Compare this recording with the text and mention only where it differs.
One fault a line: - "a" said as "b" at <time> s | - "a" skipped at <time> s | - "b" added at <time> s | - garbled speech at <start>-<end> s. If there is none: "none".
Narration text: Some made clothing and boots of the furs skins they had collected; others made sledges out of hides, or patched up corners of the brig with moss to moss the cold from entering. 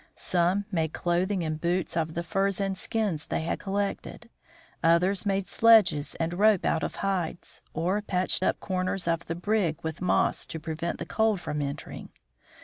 - "and" added at 2.6 s
- "and rope" added at 6.2 s
- "moss" said as "prevent" at 10.6 s